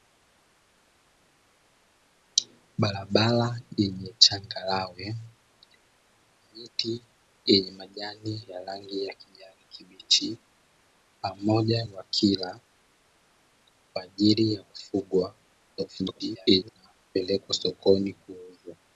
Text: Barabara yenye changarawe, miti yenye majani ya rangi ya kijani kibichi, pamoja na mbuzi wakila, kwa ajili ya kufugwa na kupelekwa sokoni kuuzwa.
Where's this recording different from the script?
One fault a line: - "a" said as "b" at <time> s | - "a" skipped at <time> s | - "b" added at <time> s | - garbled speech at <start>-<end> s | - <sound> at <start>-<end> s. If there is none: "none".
- "na mbuzi" skipped at 11.8 s
- garbled speech at 15.8-16.7 s